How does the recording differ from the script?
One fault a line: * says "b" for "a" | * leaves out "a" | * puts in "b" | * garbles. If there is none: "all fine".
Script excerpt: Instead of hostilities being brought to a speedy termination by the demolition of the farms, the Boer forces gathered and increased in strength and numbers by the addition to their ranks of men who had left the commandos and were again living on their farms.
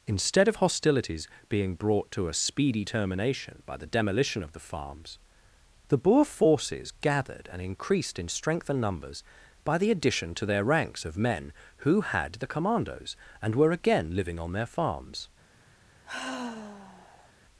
* leaves out "left"